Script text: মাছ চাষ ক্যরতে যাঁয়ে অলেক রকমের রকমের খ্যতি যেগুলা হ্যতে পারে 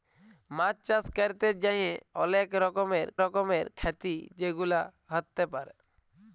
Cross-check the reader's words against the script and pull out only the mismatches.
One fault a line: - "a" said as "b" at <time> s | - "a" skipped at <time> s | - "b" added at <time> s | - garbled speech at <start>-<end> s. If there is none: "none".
none